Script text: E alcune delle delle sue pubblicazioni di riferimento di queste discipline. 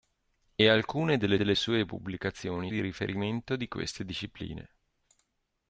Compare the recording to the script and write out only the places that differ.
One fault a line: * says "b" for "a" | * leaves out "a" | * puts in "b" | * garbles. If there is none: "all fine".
all fine